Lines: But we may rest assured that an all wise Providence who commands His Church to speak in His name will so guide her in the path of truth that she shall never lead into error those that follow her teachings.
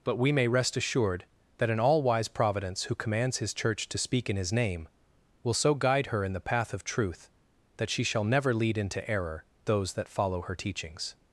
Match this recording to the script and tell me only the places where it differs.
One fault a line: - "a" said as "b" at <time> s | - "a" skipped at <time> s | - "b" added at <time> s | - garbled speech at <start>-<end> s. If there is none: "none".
none